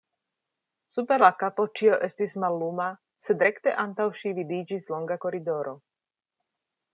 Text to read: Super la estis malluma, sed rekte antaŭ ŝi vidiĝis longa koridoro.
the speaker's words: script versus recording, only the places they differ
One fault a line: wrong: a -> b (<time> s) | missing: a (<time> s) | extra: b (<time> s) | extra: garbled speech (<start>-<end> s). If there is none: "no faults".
extra: kapo ĉio (1.4 s)